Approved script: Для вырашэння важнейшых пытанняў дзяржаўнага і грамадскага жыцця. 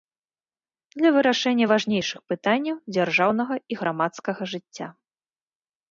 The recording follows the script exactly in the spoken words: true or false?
true